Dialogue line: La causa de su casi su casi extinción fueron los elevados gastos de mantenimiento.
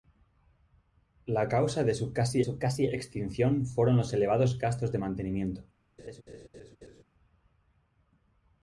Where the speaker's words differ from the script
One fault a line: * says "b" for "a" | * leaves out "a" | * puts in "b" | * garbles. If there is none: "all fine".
all fine